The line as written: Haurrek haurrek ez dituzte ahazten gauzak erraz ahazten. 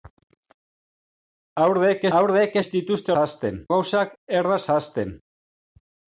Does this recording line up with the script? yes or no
yes